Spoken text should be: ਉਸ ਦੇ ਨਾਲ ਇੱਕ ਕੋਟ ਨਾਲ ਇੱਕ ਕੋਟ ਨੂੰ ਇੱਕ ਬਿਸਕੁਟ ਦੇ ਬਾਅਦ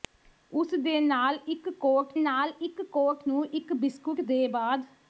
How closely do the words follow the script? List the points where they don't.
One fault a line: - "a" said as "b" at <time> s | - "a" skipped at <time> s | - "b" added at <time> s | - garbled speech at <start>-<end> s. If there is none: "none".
none